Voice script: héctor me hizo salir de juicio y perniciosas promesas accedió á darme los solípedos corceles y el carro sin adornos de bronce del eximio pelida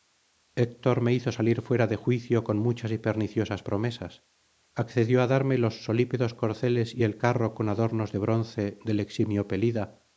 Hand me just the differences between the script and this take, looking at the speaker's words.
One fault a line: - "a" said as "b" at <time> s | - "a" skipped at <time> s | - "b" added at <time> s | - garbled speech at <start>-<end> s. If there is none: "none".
- "fuera" added at 1.6 s
- "con muchas" added at 2.4 s
- "sin" said as "con" at 7.5 s